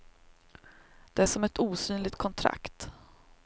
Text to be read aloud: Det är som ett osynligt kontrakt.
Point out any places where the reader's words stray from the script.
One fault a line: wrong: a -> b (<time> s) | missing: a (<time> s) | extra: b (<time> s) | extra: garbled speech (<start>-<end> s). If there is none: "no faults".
no faults